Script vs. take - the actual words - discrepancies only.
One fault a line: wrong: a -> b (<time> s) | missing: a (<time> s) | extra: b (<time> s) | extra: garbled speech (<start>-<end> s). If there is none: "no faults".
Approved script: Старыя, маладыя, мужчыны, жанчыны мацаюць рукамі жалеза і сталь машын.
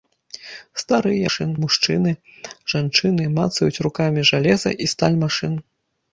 wrong: маладыя -> машын (1.2 s)